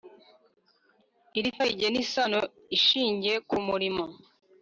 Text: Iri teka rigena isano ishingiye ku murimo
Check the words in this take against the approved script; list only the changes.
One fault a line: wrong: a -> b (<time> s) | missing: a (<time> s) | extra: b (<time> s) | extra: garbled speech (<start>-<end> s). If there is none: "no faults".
missing: teka (1.5 s)